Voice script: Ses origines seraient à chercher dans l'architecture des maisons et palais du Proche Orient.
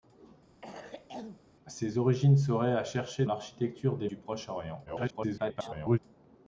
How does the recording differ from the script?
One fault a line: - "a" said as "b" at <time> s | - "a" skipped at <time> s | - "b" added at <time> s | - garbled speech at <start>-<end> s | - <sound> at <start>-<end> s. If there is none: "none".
- cough at 0.6-1.4 s
- "dans" skipped at 3.2 s
- "maisons et palais" skipped at 4.1 s
- garbled speech at 4.9-6.0 s